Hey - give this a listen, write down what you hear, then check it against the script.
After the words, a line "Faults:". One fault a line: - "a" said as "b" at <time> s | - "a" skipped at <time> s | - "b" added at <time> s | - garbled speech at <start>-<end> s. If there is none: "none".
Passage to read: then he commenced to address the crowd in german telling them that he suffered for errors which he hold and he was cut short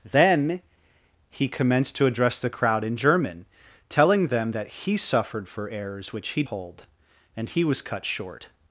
then he commenced to address the crowd in german telling them that he suffered for errors which he hold and he was cut short
Faults:
none